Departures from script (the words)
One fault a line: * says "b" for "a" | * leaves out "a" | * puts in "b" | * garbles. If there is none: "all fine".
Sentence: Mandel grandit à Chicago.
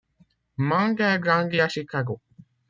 all fine